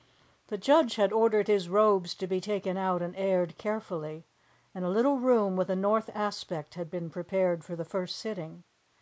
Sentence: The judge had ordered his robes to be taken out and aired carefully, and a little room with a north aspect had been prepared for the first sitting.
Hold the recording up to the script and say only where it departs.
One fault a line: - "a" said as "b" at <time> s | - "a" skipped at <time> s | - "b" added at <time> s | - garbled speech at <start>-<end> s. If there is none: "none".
none